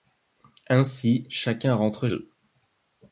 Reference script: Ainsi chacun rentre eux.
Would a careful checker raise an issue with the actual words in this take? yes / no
no